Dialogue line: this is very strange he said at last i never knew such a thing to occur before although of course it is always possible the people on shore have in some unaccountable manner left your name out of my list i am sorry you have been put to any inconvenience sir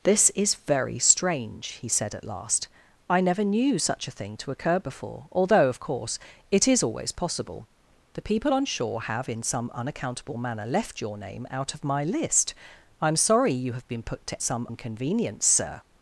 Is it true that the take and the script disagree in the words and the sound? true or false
true